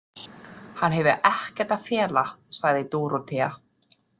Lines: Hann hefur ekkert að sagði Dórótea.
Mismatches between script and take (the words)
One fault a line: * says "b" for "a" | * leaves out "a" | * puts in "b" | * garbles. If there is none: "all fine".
* puts in "fela"